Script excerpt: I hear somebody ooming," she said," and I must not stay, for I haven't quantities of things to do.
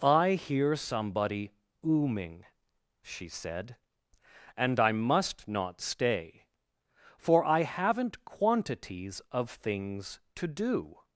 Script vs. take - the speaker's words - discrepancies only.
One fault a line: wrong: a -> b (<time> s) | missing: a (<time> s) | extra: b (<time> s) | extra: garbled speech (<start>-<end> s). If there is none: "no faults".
no faults